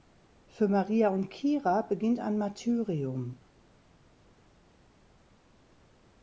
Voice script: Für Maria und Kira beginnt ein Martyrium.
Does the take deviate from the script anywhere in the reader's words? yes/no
no